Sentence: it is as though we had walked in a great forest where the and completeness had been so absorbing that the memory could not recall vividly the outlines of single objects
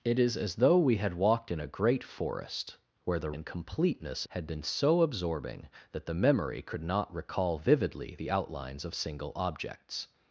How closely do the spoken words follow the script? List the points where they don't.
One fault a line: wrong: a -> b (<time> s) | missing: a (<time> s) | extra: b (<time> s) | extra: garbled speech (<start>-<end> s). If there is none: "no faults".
no faults